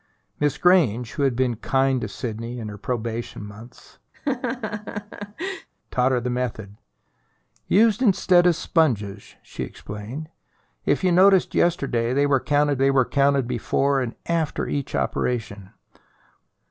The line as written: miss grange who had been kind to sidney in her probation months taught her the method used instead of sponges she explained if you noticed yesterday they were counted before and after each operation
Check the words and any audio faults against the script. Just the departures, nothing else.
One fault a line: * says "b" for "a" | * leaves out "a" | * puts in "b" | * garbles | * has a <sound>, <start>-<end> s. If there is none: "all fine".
* has a laugh, 4.1-5.7 s
* puts in "they were counted"